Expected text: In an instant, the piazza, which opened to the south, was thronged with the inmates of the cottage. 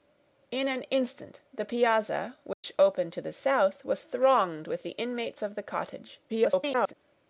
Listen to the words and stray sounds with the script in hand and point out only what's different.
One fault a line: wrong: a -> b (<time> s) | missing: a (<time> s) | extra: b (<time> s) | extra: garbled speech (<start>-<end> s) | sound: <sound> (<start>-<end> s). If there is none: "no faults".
sound: dropout (2.5-2.6 s)
extra: garbled speech (6.3-6.9 s)